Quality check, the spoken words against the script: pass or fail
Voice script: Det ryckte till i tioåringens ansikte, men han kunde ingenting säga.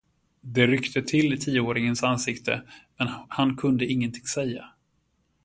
pass